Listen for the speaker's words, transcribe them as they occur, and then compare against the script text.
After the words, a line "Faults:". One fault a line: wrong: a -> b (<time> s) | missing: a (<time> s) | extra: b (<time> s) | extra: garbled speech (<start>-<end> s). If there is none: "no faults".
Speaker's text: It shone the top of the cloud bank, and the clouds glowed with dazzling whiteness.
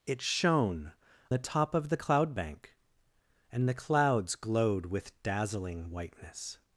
It shone the top of the cloud bank, and the clouds glowed with dazzling whiteness.
Faults:
no faults